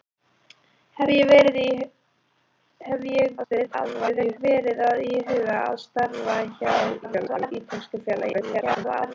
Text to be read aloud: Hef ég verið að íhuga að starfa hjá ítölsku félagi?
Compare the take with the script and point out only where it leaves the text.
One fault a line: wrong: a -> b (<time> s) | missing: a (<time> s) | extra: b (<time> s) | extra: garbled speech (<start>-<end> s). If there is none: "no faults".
extra: garbled speech (3.4-4.4 s)
extra: garbled speech (7.0-7.5 s)
extra: garbled speech (8.3-9.1 s)